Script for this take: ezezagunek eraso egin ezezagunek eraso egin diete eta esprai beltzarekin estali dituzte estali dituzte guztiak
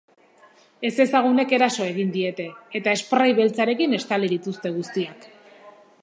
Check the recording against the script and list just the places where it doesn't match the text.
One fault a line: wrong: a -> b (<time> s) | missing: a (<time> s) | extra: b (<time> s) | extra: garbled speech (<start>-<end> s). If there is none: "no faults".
missing: ezezagunek eraso egin (2.1 s)
missing: estali dituzte (4.7 s)